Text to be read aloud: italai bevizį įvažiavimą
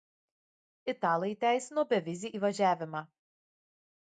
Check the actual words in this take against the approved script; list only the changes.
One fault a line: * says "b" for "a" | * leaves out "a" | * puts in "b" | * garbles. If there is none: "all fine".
* puts in "įteisino"